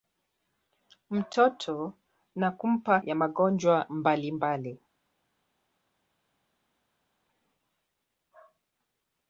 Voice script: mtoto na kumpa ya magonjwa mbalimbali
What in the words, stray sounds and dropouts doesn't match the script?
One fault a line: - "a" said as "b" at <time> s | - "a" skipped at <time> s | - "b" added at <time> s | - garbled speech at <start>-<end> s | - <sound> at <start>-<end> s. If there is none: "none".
none